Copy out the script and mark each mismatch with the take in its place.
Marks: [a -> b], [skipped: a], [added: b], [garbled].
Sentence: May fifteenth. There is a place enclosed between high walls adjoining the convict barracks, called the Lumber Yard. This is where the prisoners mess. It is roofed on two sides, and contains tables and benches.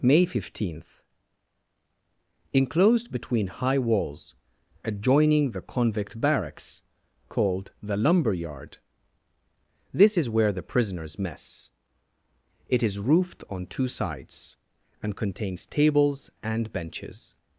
May fifteenth. [skipped: There is a place] enclosed between high walls adjoining the convict barracks, called the Lumber Yard. This is where the prisoners mess. It is roofed on two sides, and contains tables and benches.